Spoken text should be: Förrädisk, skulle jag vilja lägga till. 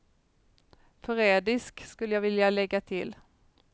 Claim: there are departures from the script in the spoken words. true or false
false